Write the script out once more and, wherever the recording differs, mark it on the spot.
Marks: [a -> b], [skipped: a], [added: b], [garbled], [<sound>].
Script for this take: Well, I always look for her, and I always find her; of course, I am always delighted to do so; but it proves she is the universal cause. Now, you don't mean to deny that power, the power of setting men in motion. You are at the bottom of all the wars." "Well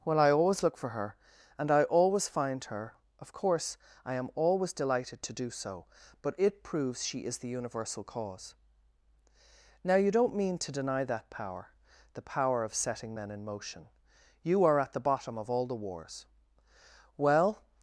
Well, I always look for her, and I always find her; of course, I am always delighted to do so; but it proves she is the universal cause. Now, you don't mean to deny that power, the power of setting men in motion. You are at the bottom of all the wars." "Well